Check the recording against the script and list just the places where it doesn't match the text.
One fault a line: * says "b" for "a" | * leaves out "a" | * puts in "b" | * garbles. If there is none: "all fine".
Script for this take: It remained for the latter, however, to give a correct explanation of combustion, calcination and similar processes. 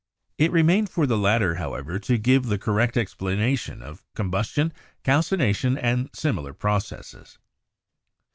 * says "the" for "a"